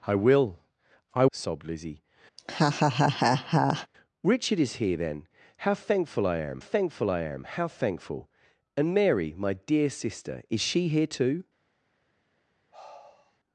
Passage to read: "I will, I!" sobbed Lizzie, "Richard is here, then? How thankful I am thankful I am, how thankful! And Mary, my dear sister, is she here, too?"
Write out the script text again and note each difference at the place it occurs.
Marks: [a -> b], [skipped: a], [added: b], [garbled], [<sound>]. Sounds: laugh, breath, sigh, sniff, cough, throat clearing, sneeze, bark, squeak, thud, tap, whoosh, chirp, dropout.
"I will, I!" sobbed Lizzie, [laugh] "Richard is here, then? How thankful I am thankful I am, how thankful! And Mary, my dear sister, is she here, too?" [sigh]